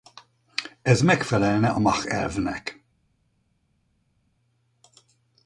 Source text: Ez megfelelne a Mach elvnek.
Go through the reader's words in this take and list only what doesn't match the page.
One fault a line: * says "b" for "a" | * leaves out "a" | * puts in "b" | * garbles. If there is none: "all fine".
all fine